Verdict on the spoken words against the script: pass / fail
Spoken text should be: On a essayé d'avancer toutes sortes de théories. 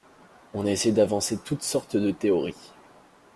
pass